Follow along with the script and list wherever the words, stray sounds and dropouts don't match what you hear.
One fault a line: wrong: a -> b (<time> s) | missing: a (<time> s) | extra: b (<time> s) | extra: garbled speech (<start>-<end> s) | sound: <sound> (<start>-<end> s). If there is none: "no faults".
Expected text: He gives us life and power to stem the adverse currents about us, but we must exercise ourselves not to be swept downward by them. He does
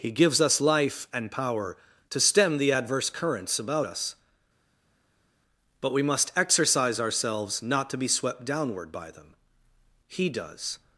no faults